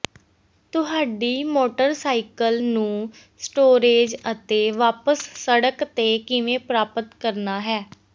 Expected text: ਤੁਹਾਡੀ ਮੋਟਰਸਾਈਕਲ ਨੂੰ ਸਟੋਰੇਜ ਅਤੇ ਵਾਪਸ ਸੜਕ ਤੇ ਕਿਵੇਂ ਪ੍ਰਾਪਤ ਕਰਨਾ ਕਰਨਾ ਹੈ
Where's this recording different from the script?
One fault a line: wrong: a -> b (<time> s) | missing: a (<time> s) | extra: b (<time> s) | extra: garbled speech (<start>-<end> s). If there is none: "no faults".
missing: ਕਰਨਾ (7.6 s)